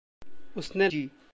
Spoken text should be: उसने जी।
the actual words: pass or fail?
pass